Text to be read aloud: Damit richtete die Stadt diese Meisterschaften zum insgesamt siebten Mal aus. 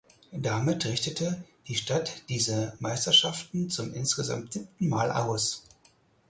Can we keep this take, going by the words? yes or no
yes